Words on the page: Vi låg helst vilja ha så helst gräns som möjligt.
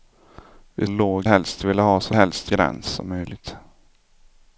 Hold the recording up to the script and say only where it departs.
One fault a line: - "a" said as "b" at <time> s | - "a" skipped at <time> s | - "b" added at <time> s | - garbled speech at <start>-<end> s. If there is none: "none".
none